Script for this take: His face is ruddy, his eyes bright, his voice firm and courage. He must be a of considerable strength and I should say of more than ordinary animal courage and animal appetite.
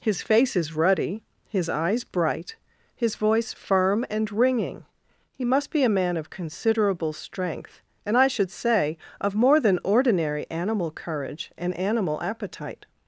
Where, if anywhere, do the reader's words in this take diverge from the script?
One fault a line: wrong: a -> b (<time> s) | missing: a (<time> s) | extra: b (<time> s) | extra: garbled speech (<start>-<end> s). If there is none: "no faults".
wrong: courage -> ringing (4.3 s)
extra: man (5.9 s)